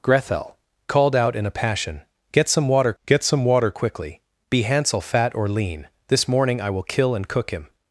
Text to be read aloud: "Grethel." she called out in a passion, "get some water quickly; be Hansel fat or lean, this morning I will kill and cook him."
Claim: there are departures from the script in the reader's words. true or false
true